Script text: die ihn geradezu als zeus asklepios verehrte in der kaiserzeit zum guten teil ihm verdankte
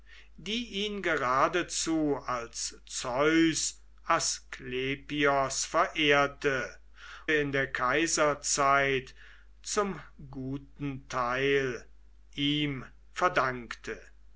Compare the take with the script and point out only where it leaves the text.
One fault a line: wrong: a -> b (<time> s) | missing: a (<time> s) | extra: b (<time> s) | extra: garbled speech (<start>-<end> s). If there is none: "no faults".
no faults